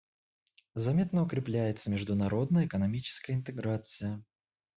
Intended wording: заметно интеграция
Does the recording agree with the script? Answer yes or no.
no